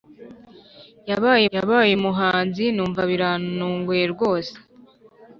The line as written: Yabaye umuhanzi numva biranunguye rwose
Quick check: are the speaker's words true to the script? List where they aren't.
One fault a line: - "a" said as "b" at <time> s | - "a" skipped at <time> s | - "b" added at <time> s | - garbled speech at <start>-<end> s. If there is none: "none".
- "yabaye" added at 1.5 s